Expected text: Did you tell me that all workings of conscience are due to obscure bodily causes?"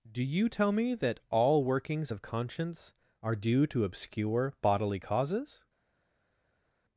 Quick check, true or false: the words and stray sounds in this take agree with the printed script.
false